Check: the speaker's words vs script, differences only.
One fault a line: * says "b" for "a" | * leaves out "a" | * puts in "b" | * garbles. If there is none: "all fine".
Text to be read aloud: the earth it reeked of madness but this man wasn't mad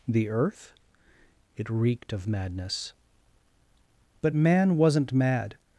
* leaves out "this"